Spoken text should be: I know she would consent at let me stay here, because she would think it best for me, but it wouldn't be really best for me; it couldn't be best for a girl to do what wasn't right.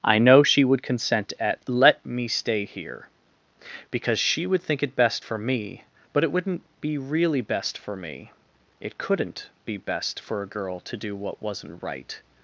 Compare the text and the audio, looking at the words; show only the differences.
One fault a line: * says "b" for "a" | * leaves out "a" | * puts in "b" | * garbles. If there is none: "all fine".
all fine